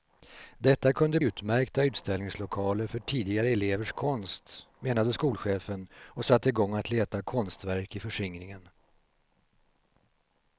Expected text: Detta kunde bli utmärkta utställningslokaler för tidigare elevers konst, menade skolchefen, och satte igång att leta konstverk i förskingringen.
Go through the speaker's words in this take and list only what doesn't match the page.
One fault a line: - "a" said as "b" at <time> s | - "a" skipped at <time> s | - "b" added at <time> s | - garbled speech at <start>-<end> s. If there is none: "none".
- "bli" skipped at 1.2 s